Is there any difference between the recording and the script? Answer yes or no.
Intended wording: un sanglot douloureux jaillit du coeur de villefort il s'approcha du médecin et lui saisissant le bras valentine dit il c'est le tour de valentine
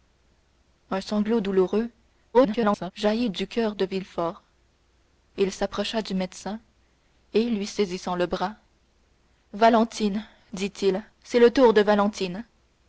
yes